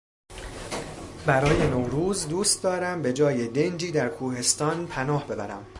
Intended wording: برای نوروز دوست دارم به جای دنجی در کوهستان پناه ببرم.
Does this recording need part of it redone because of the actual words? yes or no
no